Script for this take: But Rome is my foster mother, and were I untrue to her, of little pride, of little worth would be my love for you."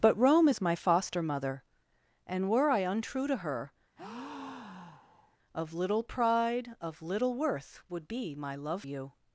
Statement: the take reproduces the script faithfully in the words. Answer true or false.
false